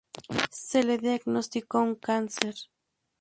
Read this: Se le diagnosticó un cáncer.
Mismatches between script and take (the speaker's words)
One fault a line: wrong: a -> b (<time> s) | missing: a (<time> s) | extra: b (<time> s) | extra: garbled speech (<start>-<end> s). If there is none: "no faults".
no faults